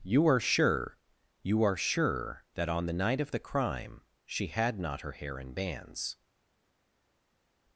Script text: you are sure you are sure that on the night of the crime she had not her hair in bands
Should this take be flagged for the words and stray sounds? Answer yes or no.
no